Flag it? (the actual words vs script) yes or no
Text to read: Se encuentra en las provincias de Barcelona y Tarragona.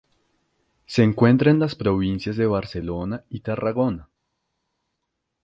no